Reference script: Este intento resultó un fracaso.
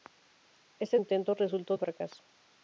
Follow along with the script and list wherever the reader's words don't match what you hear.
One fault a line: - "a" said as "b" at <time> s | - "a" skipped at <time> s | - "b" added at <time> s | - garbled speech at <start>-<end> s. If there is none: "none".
none